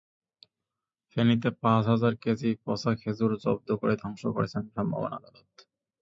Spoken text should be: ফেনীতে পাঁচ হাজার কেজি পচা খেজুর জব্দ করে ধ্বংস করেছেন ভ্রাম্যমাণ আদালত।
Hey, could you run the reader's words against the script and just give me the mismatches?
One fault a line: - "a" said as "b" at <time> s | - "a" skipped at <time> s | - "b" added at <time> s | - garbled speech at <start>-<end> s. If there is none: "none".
none